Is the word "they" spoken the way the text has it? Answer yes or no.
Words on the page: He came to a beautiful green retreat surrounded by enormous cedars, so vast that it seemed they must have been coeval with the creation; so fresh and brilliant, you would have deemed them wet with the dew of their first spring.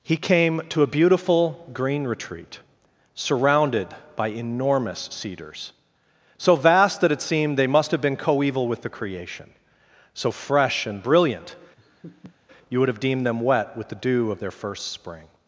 yes